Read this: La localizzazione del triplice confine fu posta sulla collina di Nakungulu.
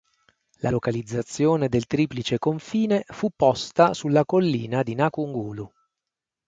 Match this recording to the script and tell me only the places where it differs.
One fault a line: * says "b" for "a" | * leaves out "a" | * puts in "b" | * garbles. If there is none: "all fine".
all fine